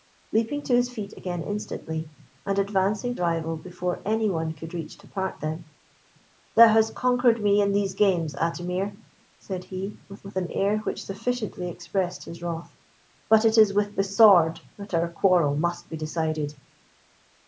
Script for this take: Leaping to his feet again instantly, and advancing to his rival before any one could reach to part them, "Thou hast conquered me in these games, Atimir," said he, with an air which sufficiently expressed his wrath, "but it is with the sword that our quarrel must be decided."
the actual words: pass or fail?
fail